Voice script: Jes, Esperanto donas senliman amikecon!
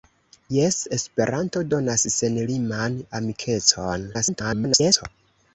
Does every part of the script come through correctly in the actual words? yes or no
no